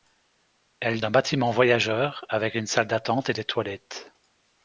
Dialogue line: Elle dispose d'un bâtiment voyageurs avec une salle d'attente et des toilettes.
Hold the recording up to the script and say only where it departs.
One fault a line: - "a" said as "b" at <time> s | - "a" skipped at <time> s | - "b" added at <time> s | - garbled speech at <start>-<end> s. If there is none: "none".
- "dispose" skipped at 1.0 s